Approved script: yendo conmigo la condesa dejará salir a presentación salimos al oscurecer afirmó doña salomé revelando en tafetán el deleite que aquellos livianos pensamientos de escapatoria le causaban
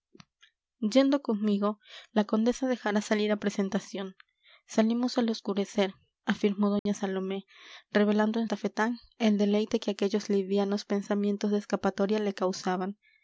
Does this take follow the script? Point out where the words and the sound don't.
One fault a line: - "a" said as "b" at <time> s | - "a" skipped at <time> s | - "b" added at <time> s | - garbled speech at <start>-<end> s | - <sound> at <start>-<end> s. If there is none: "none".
- dropout at 6.8-6.9 s